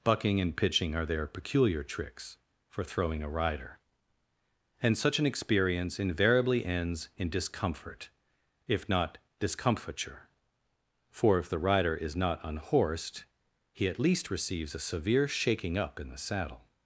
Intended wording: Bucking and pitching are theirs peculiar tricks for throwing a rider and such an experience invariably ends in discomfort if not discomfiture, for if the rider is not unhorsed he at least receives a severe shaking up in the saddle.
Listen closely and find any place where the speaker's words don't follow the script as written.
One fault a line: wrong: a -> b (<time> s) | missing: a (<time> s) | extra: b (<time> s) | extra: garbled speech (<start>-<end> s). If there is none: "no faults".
wrong: theirs -> their (1.1 s)